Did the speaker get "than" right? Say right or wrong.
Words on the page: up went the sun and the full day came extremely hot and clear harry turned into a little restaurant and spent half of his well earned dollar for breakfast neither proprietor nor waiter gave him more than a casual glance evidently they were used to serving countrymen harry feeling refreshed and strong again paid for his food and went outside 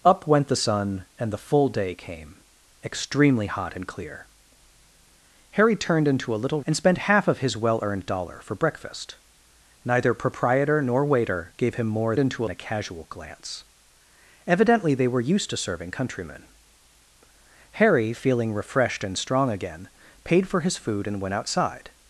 wrong